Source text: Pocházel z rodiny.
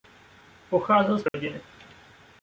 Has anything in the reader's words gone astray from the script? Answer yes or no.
no